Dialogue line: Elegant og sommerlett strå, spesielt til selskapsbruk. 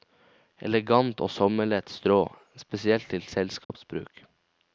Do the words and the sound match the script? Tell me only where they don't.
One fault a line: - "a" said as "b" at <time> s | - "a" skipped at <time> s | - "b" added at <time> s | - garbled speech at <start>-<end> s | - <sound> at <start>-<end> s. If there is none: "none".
- dropout at 3.6-3.7 s